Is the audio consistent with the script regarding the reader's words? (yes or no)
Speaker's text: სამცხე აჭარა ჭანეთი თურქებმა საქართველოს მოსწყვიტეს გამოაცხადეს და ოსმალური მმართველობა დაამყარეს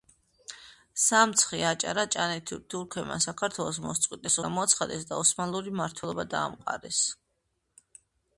yes